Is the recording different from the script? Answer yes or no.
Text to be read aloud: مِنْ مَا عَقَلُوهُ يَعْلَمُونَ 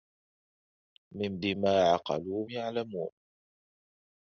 no